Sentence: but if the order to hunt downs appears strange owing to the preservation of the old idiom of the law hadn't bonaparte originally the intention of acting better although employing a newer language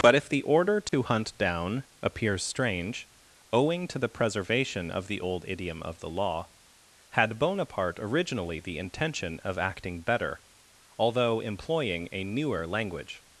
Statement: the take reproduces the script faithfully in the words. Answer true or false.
false